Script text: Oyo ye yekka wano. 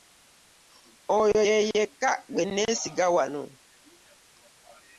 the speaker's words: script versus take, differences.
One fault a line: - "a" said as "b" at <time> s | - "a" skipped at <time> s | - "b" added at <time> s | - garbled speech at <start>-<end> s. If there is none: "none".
- "gwe nneesiga" added at 2.3 s